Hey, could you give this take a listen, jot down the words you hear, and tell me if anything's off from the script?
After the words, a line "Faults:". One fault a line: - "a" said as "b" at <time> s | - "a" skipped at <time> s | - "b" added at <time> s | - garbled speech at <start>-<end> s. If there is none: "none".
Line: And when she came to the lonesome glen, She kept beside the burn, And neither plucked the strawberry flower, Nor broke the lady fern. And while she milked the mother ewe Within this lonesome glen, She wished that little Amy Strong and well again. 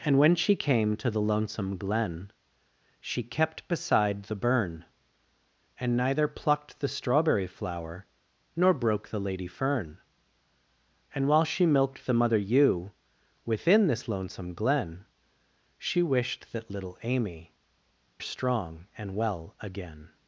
And when she came to the lonesome glen, She kept beside the burn, And neither plucked the strawberry flower, Nor broke the lady fern. And while she milked the mother ewe Within this lonesome glen, She wished that little Amy Strong and well again.
Faults:
none